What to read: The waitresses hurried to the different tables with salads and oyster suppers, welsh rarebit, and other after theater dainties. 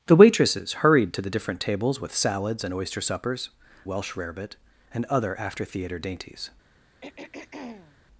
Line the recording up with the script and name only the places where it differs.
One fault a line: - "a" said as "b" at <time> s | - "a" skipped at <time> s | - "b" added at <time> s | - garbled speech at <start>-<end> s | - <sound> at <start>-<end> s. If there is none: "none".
- throat clearing at 7.0-8.0 s